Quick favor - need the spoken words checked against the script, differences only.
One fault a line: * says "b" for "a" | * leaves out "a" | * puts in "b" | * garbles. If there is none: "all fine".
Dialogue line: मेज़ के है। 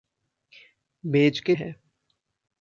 all fine